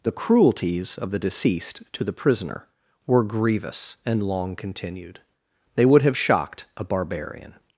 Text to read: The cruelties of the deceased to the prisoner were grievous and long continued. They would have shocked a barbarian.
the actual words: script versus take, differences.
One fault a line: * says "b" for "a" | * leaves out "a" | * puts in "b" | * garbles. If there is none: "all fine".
all fine